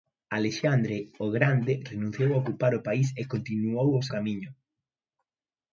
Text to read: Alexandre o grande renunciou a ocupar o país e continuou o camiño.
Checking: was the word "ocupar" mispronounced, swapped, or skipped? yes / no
no